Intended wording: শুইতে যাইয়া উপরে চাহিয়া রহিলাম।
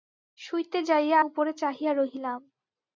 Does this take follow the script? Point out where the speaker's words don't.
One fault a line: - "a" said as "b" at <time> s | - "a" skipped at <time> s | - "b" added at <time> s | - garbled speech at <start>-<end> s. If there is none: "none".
none